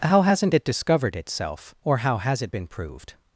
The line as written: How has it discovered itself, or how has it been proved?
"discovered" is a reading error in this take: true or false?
false